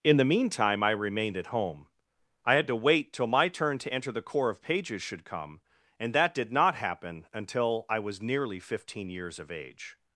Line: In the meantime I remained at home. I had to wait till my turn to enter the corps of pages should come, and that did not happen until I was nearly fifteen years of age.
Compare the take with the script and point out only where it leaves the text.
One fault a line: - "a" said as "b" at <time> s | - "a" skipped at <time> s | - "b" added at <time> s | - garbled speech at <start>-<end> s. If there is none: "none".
none